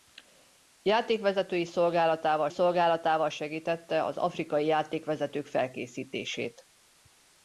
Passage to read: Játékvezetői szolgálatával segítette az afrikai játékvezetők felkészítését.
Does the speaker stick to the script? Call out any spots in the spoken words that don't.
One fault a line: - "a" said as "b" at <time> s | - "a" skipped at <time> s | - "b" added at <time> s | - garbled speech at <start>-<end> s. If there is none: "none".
- "szolgálatával" added at 2.5 s